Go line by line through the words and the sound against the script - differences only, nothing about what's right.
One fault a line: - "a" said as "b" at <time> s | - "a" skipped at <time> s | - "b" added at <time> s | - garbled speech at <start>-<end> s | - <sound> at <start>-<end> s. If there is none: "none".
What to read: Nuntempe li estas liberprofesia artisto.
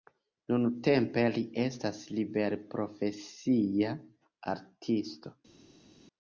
none